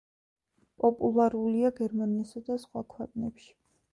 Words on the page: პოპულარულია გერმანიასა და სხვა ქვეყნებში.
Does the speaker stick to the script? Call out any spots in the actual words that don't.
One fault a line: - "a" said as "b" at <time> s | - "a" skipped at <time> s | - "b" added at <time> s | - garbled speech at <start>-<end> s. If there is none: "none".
none